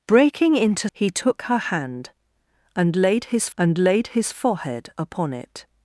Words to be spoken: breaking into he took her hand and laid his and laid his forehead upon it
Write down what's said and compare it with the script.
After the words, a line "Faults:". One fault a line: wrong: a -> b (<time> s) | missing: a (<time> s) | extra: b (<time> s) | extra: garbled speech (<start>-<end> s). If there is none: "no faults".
breaking into he took her hand and laid his and laid his forehead upon it
Faults:
no faults